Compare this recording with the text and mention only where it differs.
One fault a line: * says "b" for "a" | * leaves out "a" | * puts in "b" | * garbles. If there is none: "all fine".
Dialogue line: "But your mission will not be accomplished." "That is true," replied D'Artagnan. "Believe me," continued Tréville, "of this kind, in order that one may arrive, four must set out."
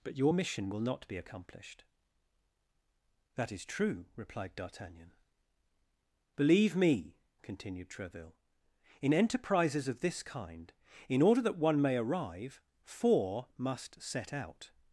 * puts in "in enterprises"